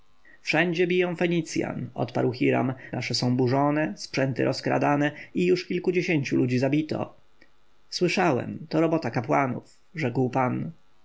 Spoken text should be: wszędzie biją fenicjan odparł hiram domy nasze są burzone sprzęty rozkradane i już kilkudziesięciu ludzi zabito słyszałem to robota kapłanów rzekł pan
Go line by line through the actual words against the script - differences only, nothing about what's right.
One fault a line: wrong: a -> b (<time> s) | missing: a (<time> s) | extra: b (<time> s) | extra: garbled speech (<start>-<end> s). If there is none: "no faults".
missing: domy (2.7 s)